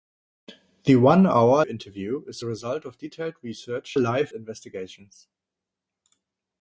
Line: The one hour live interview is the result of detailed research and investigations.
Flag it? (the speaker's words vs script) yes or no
yes